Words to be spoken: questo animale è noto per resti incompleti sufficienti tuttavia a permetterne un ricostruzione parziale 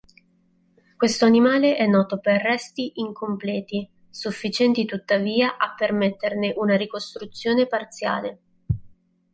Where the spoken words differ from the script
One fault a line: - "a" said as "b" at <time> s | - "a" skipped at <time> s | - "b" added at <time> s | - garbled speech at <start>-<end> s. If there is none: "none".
- "un" said as "una" at 6.5 s